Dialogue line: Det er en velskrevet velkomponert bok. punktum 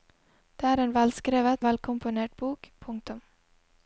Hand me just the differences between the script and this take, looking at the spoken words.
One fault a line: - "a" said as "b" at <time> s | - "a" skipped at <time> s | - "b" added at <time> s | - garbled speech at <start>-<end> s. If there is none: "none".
none